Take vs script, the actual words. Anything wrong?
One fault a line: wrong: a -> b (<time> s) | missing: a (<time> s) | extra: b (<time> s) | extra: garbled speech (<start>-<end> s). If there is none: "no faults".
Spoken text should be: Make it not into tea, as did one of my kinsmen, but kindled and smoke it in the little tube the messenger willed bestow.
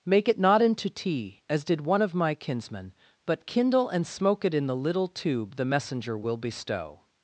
wrong: kindled -> kindle (3.5 s)
wrong: willed -> will (6.2 s)